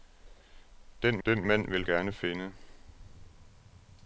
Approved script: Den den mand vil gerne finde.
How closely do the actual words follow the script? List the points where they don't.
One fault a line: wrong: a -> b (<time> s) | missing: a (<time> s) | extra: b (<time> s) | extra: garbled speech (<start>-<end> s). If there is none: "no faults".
no faults